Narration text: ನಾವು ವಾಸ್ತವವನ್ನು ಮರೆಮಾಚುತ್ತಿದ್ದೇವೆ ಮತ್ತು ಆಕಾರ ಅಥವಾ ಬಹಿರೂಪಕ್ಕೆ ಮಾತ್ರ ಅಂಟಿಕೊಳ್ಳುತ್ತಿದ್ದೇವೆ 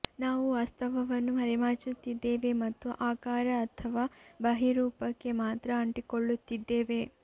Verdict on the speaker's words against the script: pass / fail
pass